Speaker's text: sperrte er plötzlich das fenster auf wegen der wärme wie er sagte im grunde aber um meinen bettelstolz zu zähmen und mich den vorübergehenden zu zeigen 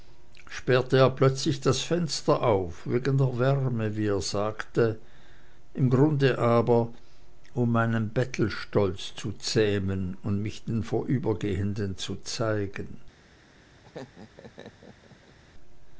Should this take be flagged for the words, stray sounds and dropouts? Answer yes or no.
yes